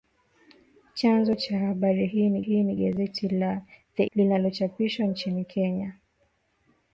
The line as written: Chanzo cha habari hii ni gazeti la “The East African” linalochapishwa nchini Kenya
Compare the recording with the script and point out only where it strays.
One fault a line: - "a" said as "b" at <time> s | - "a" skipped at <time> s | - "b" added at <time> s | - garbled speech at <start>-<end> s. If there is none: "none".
- "hii ni" added at 2.4 s
- "East African" skipped at 4.0 s